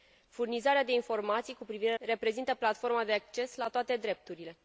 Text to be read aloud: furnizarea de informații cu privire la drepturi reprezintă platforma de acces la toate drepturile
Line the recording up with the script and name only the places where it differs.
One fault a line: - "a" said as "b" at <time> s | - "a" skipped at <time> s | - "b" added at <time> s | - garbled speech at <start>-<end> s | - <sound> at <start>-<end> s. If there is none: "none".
- "la drepturi" skipped at 1.9 s